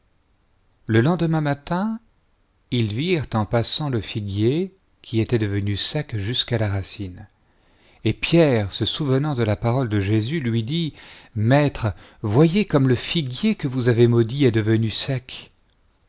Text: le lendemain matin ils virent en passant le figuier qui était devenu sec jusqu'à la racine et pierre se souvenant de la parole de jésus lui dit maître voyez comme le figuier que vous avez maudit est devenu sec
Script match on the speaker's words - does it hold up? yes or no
yes